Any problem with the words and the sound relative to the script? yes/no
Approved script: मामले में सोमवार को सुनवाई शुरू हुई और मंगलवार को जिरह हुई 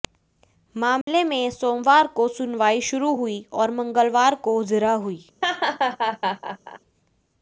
yes